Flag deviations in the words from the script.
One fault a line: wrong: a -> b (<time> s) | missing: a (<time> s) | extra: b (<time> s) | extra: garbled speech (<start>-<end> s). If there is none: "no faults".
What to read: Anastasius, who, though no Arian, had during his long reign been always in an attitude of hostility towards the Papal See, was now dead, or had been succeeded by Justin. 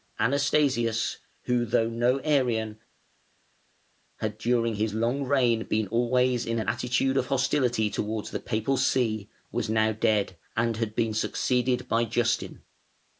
wrong: or -> and (10.6 s)